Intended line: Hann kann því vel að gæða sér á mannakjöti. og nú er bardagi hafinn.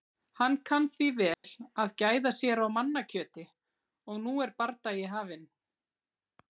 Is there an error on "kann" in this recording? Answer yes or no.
no